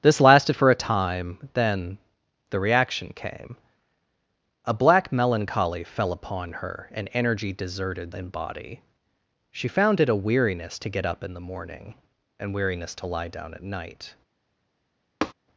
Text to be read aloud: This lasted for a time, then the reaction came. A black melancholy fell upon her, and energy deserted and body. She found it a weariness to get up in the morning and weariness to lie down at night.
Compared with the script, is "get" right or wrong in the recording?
right